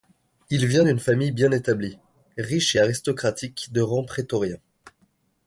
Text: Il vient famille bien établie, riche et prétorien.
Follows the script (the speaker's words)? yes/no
no